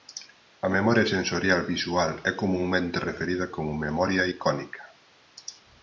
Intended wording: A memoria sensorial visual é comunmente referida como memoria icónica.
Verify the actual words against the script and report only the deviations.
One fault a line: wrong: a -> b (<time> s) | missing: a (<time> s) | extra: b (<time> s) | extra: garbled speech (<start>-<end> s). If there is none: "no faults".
no faults